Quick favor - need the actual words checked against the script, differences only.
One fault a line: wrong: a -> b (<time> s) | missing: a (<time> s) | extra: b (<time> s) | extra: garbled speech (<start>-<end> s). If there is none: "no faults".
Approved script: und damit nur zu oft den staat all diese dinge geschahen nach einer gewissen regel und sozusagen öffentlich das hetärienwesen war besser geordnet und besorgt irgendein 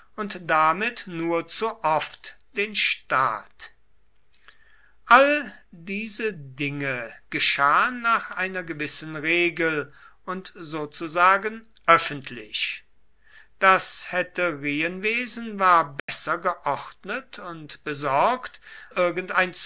no faults